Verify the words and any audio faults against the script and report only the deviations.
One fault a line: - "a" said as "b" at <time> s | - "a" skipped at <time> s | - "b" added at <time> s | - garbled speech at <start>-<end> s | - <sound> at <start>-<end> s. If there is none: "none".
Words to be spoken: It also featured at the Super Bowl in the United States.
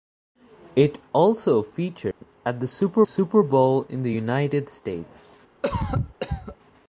- dropout at 2.1-2.2 s
- "Super" added at 3.0 s
- cough at 5.6-6.6 s